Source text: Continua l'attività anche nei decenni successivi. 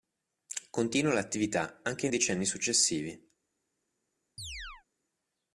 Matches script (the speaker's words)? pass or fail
fail